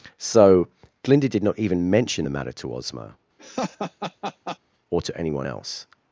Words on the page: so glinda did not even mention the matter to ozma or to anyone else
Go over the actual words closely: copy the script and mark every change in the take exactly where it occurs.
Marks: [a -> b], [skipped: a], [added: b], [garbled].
so glinda did not even mention the matter to ozma or to anyone else